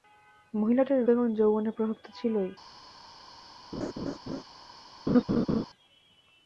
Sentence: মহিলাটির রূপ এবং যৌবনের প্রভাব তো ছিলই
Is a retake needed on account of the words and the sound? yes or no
yes